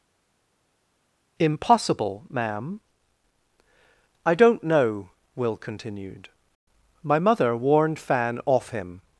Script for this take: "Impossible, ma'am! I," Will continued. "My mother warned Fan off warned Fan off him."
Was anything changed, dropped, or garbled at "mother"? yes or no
no